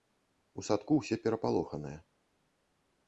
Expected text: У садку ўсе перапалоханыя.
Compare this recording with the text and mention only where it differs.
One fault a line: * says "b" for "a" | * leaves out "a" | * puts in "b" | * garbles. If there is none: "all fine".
all fine